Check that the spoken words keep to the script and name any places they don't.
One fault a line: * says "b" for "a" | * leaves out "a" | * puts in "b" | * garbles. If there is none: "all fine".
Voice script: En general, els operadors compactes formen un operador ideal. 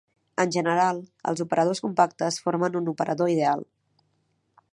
all fine